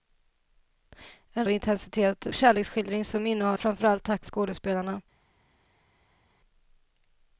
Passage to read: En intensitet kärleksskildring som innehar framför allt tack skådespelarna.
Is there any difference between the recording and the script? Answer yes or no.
no